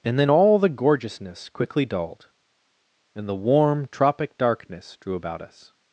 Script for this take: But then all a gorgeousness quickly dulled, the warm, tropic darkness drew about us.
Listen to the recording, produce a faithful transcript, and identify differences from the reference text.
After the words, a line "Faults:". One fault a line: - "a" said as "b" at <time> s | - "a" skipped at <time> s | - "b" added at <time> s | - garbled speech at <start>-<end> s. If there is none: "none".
And then all the gorgeousness quickly dulled, and the warm, tropic darkness drew about us.
Faults:
- "But" said as "And" at 0.0 s
- "a" said as "the" at 0.6 s
- "and" added at 3.2 s